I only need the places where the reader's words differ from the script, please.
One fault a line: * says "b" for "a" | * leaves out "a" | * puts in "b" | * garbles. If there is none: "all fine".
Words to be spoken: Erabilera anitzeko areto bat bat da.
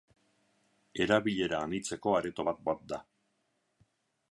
all fine